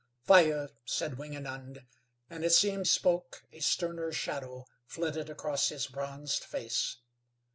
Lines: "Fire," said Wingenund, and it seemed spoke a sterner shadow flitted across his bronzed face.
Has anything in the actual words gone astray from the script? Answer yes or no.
no